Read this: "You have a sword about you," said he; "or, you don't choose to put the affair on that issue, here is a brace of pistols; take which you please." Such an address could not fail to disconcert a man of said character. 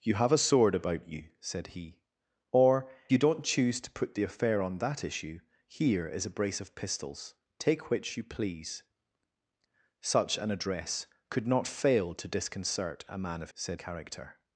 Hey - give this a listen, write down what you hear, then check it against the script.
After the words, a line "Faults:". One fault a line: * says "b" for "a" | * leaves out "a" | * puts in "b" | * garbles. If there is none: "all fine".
"You have a sword about you," said he; "or, you don't choose to put the affair on that issue, here is a brace of pistols; take which you please." Such an address could not fail to disconcert a man of said character.
Faults:
all fine